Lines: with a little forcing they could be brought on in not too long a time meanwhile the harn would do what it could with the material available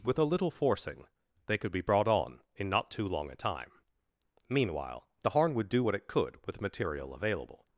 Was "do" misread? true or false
false